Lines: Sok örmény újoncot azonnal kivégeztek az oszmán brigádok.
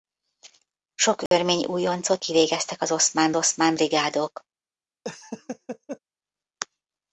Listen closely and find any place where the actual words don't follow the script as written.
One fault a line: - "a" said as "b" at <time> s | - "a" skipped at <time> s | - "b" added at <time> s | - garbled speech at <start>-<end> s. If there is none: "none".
- "azonnal" skipped at 2.2 s
- "oszmán" added at 3.4 s